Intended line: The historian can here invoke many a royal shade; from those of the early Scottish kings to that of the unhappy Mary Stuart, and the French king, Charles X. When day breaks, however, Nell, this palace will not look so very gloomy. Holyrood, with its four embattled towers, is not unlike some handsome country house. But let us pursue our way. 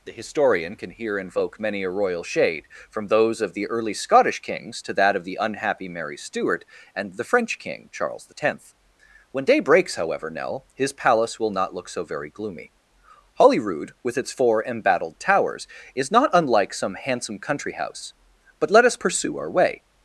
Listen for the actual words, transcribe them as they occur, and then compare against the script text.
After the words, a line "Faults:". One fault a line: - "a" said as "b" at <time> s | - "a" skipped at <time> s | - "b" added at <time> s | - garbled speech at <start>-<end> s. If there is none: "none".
The historian can here invoke many a royal shade; from those of the early Scottish kings to that of the unhappy Mary Stuart, and the French king, Charles X. When day breaks, however, Nell, his palace will not look so very gloomy. Holyrood, with its four embattled towers, is not unlike some handsome country house. But let us pursue our way.
Faults:
- "this" said as "his" at 10.7 s